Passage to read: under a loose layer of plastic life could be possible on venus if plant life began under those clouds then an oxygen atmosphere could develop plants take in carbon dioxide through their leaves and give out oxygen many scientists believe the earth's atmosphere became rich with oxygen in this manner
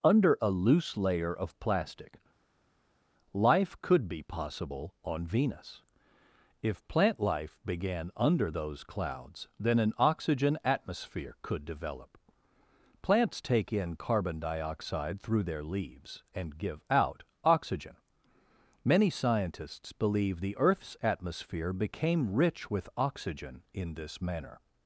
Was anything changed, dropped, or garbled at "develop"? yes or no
no